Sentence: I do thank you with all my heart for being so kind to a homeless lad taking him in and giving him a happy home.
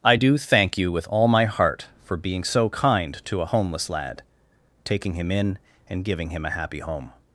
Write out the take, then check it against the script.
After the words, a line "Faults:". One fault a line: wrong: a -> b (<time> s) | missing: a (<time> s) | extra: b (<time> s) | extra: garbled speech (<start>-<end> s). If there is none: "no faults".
I do thank you with all my heart for being so kind to a homeless lad taking him in and giving him a happy home.
Faults:
no faults